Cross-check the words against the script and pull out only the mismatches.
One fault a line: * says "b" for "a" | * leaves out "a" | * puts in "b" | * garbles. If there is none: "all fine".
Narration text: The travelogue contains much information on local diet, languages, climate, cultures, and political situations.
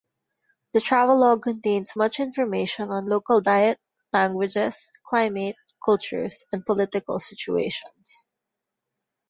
all fine